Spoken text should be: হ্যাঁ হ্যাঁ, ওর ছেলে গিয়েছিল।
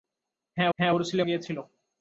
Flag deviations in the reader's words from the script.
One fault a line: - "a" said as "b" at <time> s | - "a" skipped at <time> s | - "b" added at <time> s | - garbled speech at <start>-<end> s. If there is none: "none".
none